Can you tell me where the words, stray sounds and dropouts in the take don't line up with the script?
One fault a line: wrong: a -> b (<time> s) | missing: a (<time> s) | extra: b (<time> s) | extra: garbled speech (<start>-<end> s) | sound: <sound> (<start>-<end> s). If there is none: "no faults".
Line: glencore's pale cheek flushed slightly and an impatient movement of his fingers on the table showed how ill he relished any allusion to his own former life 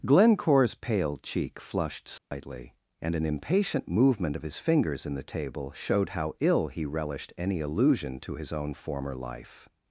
sound: dropout (2.2-2.3 s)
wrong: on -> in (5.0 s)